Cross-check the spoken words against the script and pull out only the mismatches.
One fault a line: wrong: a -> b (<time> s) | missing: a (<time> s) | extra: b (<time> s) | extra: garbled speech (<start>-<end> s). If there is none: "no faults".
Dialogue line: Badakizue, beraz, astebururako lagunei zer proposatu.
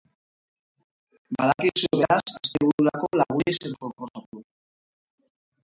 no faults